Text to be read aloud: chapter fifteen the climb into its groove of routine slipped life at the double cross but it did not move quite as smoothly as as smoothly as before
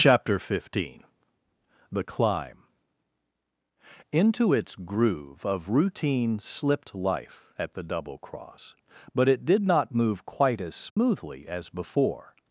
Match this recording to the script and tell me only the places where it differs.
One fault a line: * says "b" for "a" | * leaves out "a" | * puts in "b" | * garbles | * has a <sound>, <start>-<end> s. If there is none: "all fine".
* has a dropout, 10.9-11.0 s
* leaves out "as smoothly as"